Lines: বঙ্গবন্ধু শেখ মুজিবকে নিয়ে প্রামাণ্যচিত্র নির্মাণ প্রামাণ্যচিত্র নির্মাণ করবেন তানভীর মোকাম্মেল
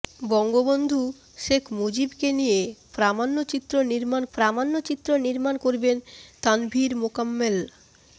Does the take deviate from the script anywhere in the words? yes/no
no